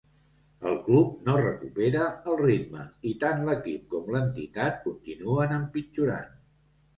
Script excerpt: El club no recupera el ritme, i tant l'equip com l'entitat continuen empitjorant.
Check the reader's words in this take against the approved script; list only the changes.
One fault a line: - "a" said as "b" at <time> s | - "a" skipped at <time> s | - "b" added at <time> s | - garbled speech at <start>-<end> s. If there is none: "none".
none